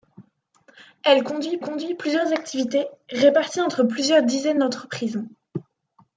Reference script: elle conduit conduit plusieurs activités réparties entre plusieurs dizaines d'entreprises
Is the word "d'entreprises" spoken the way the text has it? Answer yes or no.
yes